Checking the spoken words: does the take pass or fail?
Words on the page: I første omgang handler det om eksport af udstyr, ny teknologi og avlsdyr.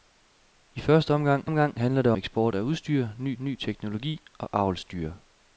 fail